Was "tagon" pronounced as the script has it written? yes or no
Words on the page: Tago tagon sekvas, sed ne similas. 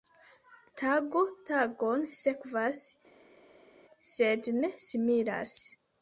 yes